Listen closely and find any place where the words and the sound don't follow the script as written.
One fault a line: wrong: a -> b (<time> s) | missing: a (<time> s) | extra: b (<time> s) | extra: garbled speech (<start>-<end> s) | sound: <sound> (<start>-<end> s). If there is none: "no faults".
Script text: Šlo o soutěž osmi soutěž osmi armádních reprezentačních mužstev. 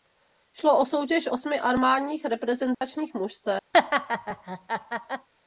missing: soutěž osmi (1.6 s)
sound: dropout (2.7-2.8 s)
sound: laugh (3.7-5.3 s)